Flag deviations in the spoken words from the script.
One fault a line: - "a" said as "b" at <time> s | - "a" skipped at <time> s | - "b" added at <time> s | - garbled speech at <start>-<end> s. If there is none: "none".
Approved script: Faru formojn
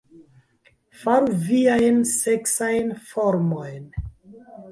- "viajn seksajn" added at 1.5 s